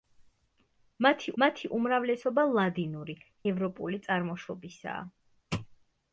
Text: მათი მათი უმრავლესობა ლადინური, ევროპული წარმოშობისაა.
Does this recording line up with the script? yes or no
yes